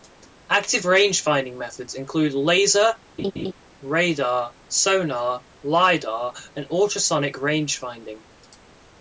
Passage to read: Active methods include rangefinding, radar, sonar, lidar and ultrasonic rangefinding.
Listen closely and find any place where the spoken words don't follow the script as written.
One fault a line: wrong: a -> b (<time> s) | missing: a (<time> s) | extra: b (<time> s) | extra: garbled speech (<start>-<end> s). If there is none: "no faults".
extra: rangefinding (0.8 s)
wrong: rangefinding -> laser (2.3 s)